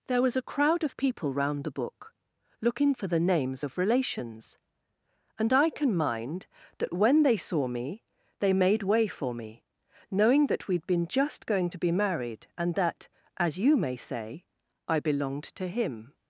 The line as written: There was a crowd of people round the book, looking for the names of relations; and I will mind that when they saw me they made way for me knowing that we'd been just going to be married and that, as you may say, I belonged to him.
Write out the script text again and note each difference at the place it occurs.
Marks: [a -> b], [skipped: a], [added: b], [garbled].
There was a crowd of people round the book, looking for the names of relations; and I [will -> can] mind that when they saw me they made way for me knowing that we'd been just going to be married and that, as you may say, I belonged to him.